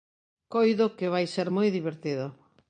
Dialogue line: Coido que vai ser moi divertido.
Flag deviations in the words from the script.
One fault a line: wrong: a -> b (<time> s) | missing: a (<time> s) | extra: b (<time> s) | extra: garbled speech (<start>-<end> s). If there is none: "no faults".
no faults